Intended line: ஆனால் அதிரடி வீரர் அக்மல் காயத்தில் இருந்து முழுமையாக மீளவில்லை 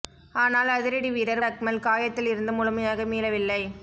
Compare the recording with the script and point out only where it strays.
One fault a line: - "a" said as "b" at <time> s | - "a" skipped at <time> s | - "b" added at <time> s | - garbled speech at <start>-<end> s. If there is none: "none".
none